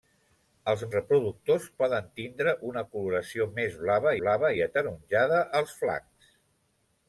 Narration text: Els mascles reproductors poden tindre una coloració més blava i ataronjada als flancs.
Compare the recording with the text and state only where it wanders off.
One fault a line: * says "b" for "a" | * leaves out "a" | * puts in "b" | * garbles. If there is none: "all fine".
* leaves out "mascles"
* puts in "blava"